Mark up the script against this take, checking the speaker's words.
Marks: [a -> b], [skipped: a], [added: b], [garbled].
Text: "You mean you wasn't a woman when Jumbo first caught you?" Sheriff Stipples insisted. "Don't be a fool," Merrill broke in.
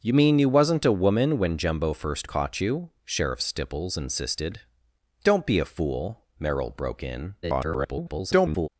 "You mean you wasn't a woman when Jumbo first caught you?" Sheriff Stipples insisted. "Don't be a fool," Merrill broke in. [garbled]